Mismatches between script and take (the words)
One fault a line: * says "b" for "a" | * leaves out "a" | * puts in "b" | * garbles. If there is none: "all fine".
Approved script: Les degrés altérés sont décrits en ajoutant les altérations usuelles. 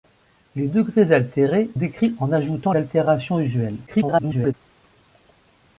* leaves out "sont"
* leaves out "les"
* garbles